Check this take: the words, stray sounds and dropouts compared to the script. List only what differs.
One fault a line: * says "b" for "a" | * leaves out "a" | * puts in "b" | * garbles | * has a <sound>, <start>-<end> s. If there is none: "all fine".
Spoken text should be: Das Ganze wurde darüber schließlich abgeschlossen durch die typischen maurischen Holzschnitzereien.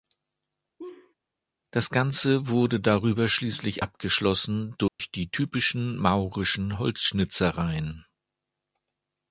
* has a laugh, 0.8-1.1 s
* has a dropout, 4.9-5.0 s